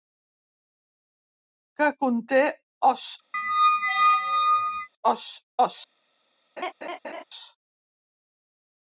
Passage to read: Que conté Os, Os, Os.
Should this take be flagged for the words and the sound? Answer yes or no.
yes